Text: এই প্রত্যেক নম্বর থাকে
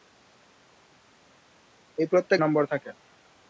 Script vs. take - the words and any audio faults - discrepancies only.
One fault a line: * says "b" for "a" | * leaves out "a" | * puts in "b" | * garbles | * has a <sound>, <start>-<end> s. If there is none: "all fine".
all fine